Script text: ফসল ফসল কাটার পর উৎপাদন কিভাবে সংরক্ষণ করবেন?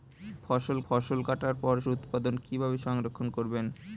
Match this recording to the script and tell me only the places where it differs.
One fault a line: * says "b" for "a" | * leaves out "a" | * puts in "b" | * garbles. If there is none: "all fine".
all fine